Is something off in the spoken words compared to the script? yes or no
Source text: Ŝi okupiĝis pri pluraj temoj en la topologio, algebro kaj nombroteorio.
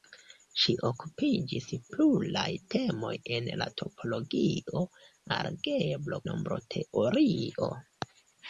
yes